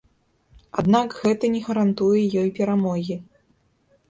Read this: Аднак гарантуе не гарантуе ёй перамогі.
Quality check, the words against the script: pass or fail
fail